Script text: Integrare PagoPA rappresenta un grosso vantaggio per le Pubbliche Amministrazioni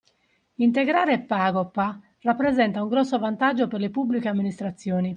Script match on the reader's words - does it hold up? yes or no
yes